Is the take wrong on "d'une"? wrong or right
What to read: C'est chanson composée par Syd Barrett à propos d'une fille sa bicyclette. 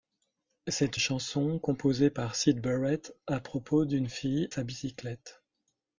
right